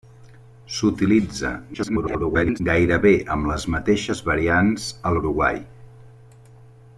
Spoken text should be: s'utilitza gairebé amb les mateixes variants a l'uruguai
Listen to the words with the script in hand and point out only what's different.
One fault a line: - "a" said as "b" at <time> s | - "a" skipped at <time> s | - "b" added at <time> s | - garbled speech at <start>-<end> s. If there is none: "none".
- garbled speech at 1.7-2.6 s